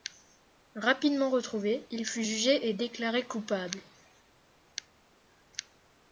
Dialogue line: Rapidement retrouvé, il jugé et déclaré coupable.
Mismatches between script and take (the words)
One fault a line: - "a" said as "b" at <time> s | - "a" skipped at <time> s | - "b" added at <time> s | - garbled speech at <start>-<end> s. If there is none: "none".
- "fut" added at 2.0 s